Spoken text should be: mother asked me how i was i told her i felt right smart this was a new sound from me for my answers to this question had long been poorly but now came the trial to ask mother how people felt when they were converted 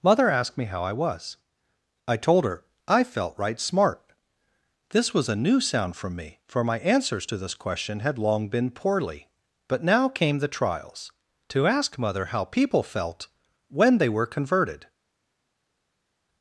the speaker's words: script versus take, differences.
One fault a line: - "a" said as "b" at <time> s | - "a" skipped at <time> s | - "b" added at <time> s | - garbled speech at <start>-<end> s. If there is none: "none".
- "trial" said as "trials" at 10.5 s